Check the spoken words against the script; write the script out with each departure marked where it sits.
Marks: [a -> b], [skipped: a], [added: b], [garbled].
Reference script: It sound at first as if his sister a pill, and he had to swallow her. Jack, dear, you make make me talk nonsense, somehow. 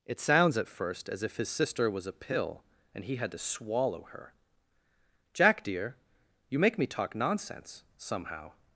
It [sound -> sounds] at first as if his sister [added: was] a pill, and he had to swallow her. Jack, dear, you make [skipped: make] me talk nonsense, somehow.